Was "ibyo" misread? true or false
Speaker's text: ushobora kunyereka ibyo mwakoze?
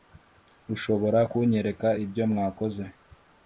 false